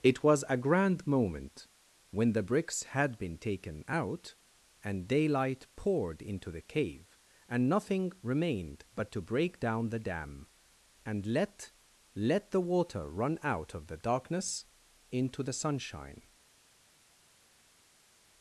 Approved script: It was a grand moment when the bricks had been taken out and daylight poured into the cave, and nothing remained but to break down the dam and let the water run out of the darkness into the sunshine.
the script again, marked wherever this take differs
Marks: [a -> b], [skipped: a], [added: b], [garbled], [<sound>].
It was a grand moment when the bricks had been taken out and daylight poured into the cave, and nothing remained but to break down the dam and let [added: let] the water run out of the darkness into the sunshine.